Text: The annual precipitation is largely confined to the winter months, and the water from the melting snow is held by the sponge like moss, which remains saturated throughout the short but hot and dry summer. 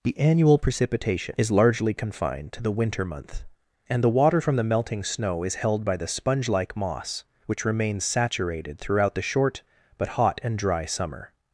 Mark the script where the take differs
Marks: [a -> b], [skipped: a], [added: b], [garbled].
The annual precipitation is largely confined to the winter [months, -> month] and the water from the melting snow is held by the sponge like moss, which remains saturated throughout the short but hot and dry summer.